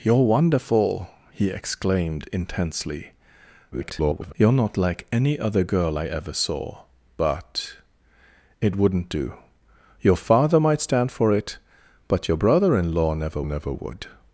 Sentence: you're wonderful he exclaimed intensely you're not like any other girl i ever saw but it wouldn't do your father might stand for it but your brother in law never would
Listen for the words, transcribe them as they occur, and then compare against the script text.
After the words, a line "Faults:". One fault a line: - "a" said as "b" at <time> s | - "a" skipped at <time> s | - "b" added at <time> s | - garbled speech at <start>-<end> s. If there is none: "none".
you're wonderful he exclaimed intensely [garbled] you're not like any other girl i ever saw but it wouldn't do your father might stand for it but your brother in law never never would
Faults:
- garbled speech at 3.7-4.3 s
- "never" added at 13.4 s